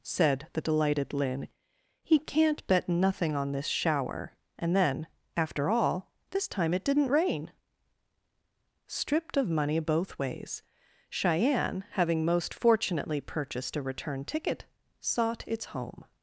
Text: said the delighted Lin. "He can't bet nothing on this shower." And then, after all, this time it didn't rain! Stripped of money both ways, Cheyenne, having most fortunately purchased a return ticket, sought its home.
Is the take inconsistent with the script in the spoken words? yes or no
no